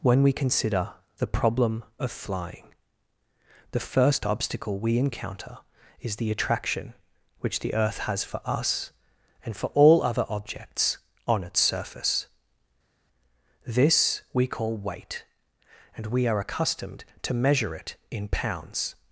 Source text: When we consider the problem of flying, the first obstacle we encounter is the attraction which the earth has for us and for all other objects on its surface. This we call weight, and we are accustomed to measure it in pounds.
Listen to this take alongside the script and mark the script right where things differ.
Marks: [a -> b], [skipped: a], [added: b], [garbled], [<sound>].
When we consider the problem of flying, the first obstacle we encounter is the attraction which the earth has for us and for all other objects on its surface. This we call weight, and we are accustomed to measure it in pounds.